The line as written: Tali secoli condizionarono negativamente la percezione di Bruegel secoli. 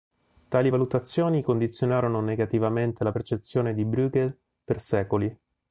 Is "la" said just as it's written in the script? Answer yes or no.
yes